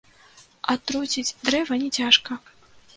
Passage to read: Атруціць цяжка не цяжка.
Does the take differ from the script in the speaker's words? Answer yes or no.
yes